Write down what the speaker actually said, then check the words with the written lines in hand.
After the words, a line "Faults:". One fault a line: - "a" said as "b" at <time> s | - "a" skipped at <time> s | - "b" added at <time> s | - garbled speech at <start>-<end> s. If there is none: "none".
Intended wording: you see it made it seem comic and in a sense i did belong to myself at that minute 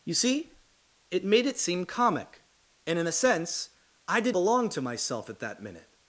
you see it made it seem comic and in a sense i did belong to myself at that minute
Faults:
none